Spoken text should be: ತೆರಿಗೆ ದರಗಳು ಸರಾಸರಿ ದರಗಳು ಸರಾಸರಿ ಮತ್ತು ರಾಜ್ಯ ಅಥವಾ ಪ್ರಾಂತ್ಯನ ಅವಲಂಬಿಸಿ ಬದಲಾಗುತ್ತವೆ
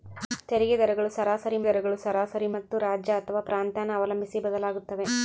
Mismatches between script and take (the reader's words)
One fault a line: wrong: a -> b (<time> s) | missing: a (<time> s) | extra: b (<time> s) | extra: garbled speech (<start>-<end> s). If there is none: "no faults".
no faults